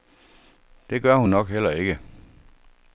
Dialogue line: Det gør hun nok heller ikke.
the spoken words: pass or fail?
pass